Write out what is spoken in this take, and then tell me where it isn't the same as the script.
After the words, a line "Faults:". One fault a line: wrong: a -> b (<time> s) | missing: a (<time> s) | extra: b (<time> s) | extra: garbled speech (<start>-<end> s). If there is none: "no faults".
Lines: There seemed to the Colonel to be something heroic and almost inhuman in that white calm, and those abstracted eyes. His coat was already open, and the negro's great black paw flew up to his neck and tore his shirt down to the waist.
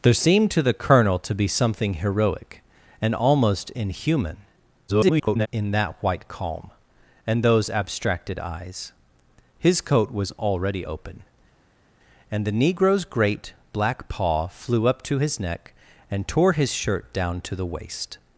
There seemed to the Colonel to be something heroic and almost inhuman [garbled] in that white calm, and those abstracted eyes. His coat was already open, and the negro's great black paw flew up to his neck and tore his shirt down to the waist.
Faults:
extra: garbled speech (4.9-5.5 s)